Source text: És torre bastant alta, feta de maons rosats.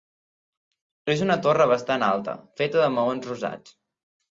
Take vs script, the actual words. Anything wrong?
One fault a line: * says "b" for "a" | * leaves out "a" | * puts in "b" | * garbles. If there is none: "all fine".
* puts in "una"